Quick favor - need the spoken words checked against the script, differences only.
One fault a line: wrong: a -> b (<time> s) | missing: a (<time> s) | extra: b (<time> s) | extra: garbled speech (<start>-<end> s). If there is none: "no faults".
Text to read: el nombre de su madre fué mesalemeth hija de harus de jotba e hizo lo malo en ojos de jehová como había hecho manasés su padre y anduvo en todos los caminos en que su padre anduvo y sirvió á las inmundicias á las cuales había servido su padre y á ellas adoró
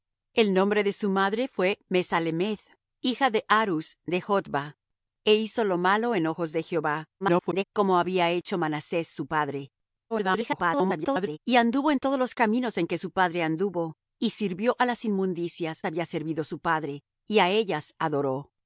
extra: garbled speech (7.2-7.6 s)
extra: garbled speech (10.1-11.4 s)
missing: á las cuales (15.8 s)